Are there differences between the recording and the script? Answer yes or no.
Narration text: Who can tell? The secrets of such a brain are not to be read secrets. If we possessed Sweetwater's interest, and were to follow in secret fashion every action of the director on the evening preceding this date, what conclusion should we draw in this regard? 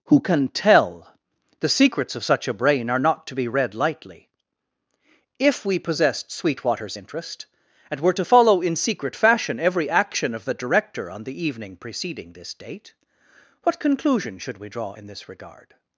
yes